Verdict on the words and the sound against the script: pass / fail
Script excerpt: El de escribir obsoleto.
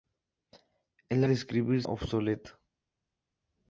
pass